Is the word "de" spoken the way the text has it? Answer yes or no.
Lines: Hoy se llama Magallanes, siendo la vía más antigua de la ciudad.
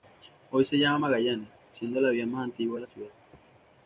yes